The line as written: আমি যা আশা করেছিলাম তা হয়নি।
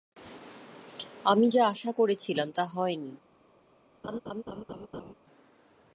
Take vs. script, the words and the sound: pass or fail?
fail